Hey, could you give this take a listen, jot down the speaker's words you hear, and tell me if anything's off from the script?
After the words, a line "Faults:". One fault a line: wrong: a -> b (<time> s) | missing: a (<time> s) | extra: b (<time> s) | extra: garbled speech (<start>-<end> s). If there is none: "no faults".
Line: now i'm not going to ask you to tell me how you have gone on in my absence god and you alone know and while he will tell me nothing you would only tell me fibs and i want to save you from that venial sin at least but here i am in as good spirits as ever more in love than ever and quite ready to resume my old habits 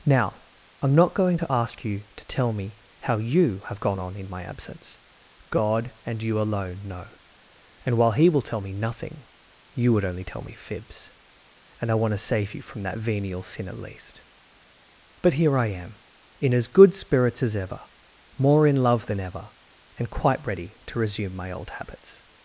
now i'm not going to ask you to tell me how you have gone on in my absence god and you alone know and while he will tell me nothing you would only tell me fibs and i want to save you from that venial sin at least but here i am in as good spirits as ever more in love than ever and quite ready to resume my old habits
Faults:
no faults